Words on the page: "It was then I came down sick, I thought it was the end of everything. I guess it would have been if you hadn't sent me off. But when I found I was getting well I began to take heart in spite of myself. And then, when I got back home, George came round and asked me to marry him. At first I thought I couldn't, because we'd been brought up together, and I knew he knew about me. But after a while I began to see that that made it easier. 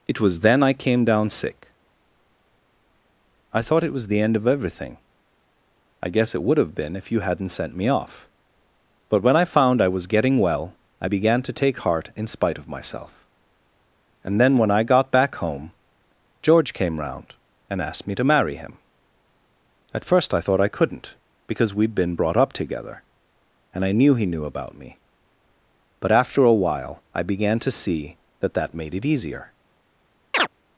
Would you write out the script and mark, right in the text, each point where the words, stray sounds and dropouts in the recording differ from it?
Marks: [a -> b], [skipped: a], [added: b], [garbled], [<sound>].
"It was then I came down sick, I thought it was the end of everything. I guess it would have been if you hadn't sent me off. But when I found I was getting well I began to take heart in spite of myself. And then, when I got back home, George came round and asked me to marry him. At first I thought I couldn't, because we'd been brought up together, and I knew he knew about me. But after a while I began to see that that made it easier. [chirp]